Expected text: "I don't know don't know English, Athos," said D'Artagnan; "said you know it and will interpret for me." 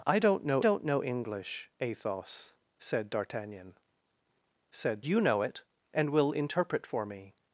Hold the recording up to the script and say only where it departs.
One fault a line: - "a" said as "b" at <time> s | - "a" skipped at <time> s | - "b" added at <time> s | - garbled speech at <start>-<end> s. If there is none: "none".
none